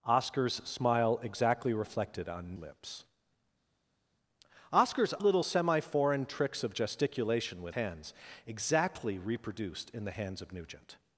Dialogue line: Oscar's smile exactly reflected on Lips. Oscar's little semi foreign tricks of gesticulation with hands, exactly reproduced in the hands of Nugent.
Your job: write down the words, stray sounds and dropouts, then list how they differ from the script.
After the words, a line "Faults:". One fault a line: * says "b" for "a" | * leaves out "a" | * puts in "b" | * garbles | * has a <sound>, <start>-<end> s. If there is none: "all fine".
Oscar's smile exactly reflected on Lips. Oscar's little semi foreign tricks of gesticulation with hands, exactly reproduced in the hands of Nugent.
Faults:
all fine